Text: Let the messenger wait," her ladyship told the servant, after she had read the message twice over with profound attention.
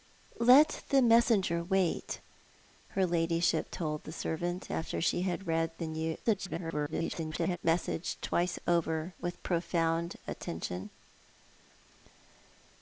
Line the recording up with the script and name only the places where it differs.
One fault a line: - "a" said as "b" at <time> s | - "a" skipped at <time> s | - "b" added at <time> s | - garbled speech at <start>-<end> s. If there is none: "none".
- garbled speech at 6.2-7.6 s